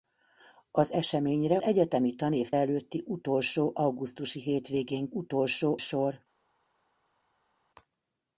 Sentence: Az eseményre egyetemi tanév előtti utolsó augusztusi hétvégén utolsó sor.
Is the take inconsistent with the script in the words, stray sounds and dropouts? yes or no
no